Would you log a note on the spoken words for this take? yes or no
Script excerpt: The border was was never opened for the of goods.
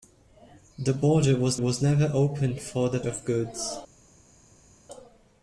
no